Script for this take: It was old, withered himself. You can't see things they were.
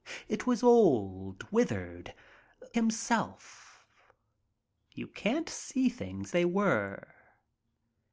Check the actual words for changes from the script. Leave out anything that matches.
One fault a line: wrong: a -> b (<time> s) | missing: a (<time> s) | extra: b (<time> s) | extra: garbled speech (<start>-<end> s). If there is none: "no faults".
no faults